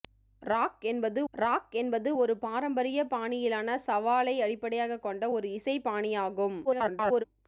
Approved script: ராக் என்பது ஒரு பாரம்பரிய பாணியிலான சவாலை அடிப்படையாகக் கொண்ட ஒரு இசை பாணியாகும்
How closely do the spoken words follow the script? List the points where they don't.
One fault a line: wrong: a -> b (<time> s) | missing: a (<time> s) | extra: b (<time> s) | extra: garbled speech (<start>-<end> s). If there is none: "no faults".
extra: ராக் என்பது (1.3 s)
extra: garbled speech (6.6-7.2 s)